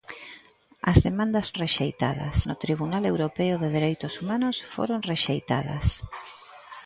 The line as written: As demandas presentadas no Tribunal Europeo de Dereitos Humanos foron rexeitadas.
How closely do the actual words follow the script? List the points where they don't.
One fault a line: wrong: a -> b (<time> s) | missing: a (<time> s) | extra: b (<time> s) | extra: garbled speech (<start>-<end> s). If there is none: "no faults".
wrong: presentadas -> rexeitadas (1.6 s)